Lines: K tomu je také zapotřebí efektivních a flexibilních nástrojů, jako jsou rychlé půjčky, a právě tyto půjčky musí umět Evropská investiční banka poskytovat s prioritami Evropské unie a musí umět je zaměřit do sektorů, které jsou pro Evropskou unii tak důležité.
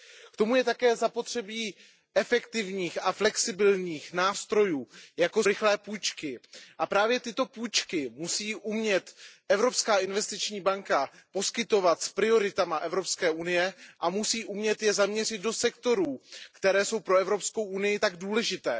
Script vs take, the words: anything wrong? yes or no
yes